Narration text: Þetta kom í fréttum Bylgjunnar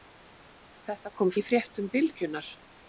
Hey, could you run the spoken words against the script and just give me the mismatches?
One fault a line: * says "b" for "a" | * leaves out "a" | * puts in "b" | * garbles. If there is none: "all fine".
all fine